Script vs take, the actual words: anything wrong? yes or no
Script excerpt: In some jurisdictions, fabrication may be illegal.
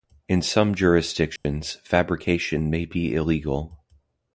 no